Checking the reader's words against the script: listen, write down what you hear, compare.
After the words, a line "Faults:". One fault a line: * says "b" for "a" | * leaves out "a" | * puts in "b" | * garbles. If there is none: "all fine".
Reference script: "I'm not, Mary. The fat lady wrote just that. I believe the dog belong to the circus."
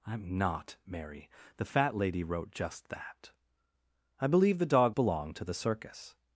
"I'm not, Mary. The fat lady wrote just that. I believe the dog belong to the circus."
Faults:
all fine